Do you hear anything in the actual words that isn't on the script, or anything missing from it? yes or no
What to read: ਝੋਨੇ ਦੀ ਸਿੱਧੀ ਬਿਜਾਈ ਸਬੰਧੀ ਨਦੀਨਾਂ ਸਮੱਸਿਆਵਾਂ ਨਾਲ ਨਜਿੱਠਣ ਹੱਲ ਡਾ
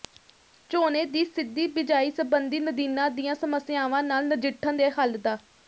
yes